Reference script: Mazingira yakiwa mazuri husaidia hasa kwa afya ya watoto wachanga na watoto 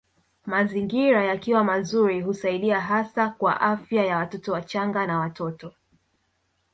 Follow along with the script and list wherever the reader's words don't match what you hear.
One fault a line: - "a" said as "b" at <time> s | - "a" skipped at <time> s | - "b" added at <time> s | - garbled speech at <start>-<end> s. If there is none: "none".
none